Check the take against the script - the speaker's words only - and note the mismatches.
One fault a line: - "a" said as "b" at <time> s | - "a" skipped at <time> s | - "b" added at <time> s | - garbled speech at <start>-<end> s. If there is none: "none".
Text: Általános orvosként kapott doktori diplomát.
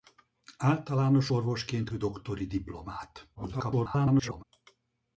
- "kapott" skipped at 1.9 s
- garbled speech at 3.4-4.4 s